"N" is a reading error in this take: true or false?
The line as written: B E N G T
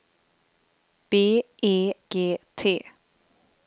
true